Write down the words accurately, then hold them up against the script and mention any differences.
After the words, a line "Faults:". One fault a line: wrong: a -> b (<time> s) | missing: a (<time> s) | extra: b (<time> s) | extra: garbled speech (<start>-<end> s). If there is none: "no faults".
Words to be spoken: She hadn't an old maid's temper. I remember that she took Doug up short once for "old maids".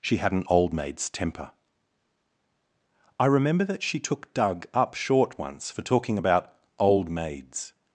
She had an old maid's temper. I remember that she took Doug up short once for talking about "old maids".
Faults:
wrong: hadn't -> had (0.2 s)
extra: talking about (5.8 s)